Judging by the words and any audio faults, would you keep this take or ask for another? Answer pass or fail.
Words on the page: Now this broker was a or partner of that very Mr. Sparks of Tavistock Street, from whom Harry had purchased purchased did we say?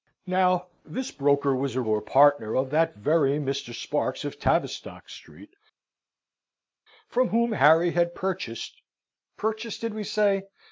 pass